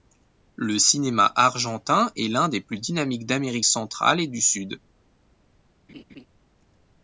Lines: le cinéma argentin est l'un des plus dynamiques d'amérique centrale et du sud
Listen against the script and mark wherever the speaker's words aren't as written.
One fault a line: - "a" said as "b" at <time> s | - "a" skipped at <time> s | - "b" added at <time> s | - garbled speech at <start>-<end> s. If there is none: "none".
none